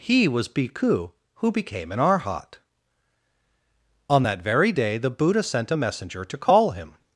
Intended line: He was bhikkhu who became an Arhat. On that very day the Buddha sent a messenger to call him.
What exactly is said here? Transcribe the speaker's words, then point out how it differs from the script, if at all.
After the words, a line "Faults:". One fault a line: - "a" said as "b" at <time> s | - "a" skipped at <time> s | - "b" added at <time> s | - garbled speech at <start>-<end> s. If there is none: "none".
He was bhikkhu who became an Arhat. On that very day the Buddha sent a messenger to call him.
Faults:
none